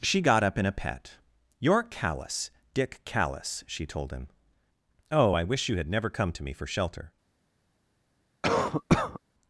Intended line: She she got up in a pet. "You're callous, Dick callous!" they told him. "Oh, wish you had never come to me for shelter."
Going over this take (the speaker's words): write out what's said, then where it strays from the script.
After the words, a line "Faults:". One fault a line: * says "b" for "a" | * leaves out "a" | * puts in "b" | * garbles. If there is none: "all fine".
She got up in a pet. "You're callous, Dick callous!" she told him. "Oh, I wish you had never come to me for shelter."
Faults:
* leaves out "she"
* says "she" for "they"
* puts in "I"